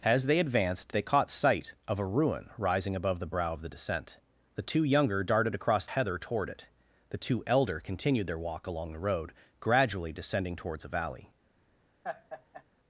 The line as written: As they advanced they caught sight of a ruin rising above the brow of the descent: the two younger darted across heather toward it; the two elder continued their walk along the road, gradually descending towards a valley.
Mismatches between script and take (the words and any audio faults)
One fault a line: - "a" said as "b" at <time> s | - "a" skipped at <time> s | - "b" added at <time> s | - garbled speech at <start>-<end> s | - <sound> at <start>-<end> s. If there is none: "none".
- laugh at 12.0-12.6 s